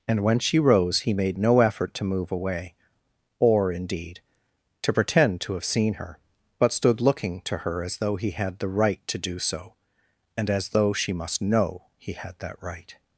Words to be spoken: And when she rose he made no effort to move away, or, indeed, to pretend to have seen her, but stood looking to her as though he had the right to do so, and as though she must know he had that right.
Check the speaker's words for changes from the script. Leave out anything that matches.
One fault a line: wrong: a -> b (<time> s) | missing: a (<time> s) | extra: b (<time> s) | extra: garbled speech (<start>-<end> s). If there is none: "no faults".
no faults